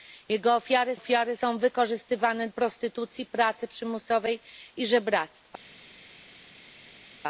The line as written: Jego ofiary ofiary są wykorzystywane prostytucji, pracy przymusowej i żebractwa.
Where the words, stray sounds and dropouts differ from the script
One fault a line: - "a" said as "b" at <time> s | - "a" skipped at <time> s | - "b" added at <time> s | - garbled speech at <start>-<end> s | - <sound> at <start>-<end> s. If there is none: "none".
none